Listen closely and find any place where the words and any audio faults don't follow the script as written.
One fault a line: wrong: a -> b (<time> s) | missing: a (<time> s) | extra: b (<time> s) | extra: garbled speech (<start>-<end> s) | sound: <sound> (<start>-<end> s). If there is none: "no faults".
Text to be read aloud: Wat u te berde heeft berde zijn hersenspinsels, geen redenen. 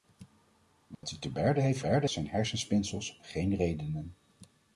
sound: dropout (0.9-1.0 s)